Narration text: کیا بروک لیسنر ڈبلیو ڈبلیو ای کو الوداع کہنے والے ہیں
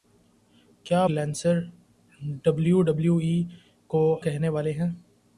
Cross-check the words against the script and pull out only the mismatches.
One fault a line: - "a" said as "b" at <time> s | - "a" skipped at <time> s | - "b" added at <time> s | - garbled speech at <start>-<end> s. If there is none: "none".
- "بروک" skipped at 1.0 s
- "الوداع" skipped at 4.0 s